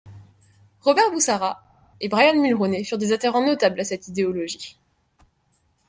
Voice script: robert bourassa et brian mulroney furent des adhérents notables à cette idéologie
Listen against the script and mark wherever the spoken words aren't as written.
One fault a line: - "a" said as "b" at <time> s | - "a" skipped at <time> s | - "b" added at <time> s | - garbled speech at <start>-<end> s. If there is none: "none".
none